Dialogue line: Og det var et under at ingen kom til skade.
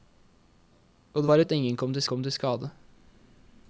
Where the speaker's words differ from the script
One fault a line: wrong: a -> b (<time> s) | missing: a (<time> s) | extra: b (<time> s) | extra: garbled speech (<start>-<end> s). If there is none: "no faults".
wrong: et under at ingen -> at ingen kom til (1.4 s)